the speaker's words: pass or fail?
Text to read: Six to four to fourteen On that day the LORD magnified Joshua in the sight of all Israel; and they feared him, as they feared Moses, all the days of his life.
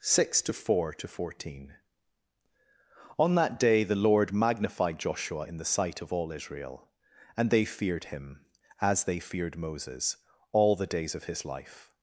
pass